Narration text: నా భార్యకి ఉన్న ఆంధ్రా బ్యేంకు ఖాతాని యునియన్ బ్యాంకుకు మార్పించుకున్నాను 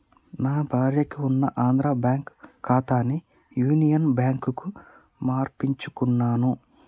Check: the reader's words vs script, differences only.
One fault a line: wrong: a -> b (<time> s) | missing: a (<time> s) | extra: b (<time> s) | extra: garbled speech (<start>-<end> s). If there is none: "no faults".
no faults